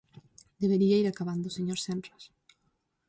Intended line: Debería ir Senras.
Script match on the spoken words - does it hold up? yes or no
no